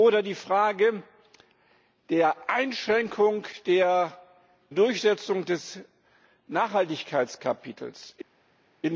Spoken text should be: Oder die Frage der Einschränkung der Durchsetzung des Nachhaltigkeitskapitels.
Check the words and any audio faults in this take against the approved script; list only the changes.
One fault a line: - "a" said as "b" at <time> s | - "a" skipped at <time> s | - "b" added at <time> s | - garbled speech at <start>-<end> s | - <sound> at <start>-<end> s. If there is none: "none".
none